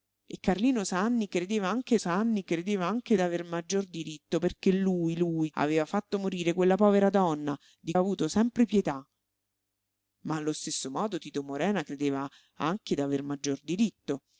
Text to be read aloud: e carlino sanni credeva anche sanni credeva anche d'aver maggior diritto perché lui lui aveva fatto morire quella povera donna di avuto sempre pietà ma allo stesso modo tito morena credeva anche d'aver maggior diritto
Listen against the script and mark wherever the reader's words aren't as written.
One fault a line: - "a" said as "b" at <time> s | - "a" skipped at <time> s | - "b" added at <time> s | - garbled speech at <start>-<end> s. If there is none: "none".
none